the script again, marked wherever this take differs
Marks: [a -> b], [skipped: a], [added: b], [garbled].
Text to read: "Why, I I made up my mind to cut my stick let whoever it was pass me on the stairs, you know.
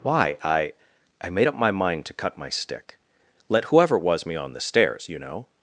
"Why, I I made up my mind to cut my stick let whoever it was [skipped: pass] me on the stairs, you know.